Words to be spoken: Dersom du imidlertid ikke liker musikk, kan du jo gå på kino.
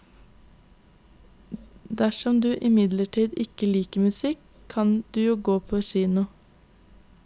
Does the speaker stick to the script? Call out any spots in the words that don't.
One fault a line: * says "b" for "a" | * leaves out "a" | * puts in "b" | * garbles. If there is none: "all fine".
all fine